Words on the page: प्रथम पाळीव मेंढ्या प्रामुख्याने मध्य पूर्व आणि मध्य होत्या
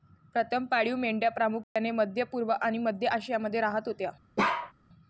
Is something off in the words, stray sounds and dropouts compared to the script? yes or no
yes